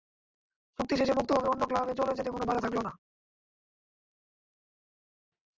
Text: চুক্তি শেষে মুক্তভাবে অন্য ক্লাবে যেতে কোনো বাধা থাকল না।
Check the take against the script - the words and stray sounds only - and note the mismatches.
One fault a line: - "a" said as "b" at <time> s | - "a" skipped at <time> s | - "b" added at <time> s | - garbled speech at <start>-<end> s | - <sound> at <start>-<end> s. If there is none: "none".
- "চলে" added at 2.0 s